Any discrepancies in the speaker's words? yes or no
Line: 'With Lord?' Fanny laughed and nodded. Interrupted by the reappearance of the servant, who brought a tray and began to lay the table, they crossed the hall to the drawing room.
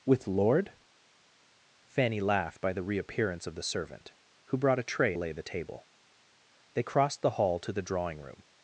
yes